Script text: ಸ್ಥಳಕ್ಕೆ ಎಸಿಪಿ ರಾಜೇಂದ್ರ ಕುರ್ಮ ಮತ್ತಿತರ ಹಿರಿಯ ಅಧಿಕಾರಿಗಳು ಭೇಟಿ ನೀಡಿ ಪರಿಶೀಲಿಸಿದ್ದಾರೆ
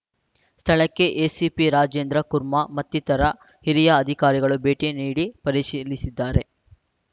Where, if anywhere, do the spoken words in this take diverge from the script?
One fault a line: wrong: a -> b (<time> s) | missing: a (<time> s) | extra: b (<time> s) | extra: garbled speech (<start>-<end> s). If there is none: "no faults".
no faults